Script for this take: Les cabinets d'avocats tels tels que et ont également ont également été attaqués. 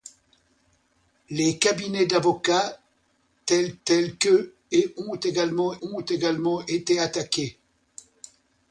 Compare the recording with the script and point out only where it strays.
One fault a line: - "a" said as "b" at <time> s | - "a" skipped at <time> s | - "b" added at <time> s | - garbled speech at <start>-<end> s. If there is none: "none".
none